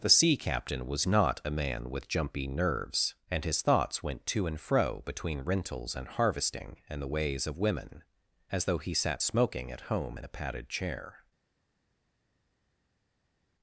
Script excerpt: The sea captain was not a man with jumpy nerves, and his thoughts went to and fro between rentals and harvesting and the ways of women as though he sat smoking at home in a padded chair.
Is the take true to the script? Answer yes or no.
yes